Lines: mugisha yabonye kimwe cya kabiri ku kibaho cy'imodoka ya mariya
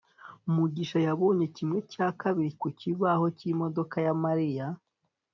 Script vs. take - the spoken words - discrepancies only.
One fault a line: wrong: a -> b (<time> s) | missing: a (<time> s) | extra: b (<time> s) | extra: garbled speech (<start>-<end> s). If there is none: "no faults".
no faults